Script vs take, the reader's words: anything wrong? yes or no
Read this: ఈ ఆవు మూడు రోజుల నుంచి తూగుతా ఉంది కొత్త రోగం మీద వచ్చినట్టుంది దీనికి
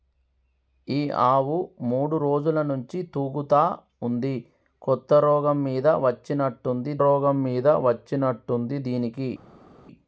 yes